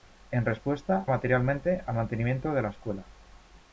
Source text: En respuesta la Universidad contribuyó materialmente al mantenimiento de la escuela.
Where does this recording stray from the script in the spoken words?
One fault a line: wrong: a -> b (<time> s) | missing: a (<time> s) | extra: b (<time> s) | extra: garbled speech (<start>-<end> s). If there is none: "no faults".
missing: la Universidad contribuyó (1.1 s)